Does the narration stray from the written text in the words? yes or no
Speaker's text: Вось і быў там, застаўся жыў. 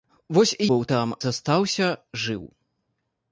no